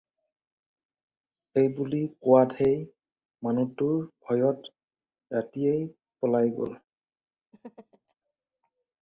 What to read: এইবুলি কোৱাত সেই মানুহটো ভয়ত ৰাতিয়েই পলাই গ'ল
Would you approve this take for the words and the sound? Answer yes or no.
no